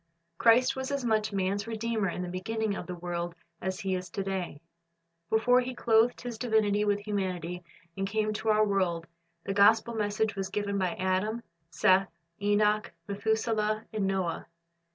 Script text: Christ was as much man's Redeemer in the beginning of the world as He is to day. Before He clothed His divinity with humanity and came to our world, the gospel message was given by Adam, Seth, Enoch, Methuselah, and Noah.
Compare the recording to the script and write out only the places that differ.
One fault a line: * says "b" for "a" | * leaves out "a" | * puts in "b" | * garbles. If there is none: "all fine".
all fine